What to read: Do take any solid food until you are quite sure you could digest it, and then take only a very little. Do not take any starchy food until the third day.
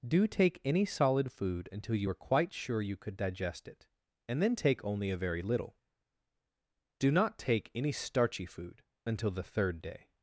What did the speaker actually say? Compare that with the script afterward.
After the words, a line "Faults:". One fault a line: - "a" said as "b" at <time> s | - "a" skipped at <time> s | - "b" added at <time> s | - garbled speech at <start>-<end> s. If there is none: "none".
Do take any solid food until you are quite sure you could digest it, and then take only a very little. Do not take any starchy food until the third day.
Faults:
none